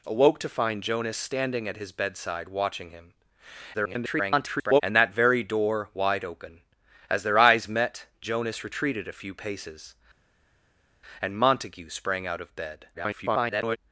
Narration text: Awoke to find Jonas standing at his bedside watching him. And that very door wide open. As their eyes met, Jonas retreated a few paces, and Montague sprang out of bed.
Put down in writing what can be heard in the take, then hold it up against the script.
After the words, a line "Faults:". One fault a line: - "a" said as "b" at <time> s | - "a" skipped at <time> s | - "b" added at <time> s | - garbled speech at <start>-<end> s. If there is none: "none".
Awoke to find Jonas standing at his bedside watching him. [garbled] And that very door wide open. As their eyes met, Jonas retreated a few paces, and Montague sprang out of bed. [garbled]
Faults:
- garbled speech at 3.7-4.8 s
- garbled speech at 12.9-13.8 s